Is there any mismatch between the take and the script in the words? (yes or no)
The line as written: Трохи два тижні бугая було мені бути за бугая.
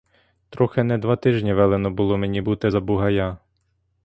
yes